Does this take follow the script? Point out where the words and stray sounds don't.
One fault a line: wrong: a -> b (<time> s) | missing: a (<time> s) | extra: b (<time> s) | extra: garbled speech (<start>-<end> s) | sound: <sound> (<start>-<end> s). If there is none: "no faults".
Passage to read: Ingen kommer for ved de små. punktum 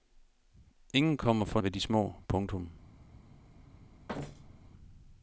sound: thud (4.1-4.7 s)